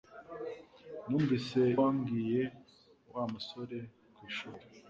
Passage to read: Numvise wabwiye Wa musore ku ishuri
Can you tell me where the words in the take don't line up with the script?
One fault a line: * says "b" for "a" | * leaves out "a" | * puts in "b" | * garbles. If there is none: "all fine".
all fine